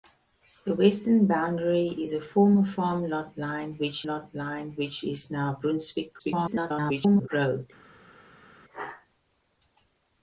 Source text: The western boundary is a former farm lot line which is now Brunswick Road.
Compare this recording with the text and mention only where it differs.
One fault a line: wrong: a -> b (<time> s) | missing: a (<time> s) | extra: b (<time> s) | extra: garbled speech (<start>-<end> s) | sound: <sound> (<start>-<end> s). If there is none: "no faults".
extra: lot line which (4.1 s)
extra: garbled speech (6.2-7.3 s)